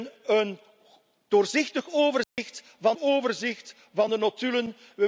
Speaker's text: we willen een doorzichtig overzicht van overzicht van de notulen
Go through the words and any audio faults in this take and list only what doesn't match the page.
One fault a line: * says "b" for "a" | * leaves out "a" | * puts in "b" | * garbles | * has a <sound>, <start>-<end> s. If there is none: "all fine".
* has a dropout, 2.2-2.4 s